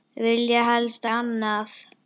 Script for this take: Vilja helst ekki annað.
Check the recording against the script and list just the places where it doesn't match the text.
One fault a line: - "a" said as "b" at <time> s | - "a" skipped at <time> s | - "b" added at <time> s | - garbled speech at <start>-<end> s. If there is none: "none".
- "ekki" skipped at 1.1 s